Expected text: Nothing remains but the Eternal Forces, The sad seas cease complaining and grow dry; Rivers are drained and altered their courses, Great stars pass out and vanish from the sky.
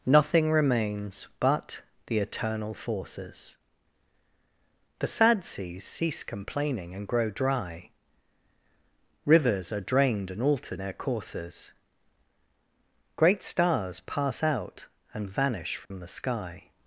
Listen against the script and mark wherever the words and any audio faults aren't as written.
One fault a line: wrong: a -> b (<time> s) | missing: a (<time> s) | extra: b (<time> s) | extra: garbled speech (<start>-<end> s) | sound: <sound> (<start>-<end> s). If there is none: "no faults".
sound: dropout (15.9-15.9 s)